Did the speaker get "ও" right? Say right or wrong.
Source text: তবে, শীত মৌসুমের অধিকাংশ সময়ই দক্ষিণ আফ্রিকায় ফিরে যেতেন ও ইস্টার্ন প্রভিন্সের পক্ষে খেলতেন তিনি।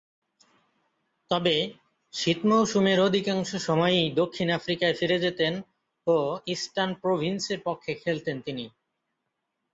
right